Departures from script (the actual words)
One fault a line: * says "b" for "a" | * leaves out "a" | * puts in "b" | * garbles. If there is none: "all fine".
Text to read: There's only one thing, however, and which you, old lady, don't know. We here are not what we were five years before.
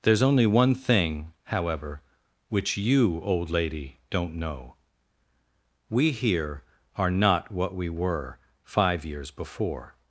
* leaves out "and"